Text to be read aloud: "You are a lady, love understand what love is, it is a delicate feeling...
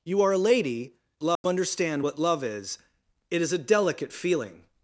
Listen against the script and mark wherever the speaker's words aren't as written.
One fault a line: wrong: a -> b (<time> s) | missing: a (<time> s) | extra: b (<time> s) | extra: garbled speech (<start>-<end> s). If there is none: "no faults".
no faults